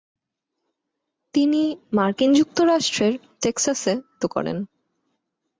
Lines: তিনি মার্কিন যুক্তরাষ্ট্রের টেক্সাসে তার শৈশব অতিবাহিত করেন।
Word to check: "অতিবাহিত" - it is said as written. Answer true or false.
false